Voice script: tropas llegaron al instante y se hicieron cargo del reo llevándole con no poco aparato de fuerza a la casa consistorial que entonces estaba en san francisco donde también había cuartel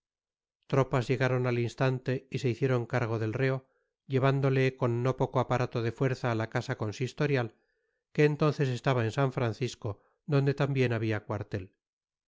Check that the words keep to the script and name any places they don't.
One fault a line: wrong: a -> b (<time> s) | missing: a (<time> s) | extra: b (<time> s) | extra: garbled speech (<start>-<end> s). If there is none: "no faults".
no faults